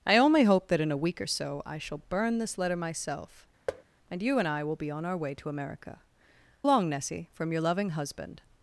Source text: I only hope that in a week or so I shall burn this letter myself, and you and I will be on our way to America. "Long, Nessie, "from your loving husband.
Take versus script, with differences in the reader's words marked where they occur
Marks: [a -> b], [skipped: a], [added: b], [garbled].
I only hope that in a week or so I shall burn this letter myself, and you and I will be on our way to America. "Long, Nessie, "from your loving husband.